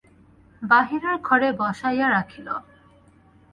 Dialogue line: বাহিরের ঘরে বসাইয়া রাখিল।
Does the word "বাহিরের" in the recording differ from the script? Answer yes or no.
no